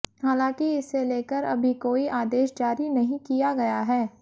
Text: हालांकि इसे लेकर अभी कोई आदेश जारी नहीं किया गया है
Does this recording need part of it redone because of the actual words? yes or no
no